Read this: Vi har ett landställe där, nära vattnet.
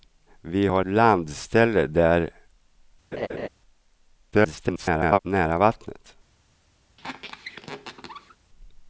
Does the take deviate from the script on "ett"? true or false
true